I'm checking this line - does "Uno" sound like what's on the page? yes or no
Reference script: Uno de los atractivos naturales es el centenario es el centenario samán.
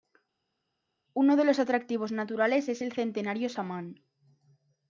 yes